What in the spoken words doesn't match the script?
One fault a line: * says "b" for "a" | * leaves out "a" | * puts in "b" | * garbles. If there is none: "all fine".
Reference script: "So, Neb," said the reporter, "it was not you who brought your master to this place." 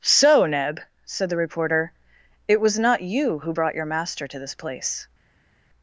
all fine